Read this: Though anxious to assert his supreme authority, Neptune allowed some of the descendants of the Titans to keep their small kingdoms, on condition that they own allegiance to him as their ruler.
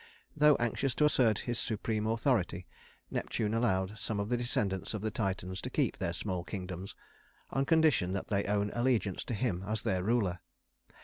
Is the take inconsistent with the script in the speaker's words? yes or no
no